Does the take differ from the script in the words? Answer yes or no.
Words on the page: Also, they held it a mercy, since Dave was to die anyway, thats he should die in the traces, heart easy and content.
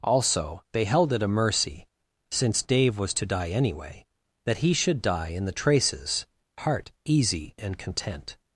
yes